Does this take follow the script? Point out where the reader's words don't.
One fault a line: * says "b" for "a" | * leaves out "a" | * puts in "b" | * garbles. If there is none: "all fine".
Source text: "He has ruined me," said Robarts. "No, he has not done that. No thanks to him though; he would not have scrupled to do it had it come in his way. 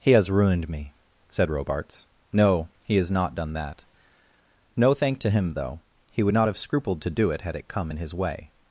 * says "thank" for "thanks"